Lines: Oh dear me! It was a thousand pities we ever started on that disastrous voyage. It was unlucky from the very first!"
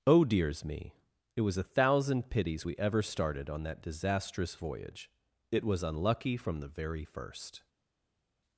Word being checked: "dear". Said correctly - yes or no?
no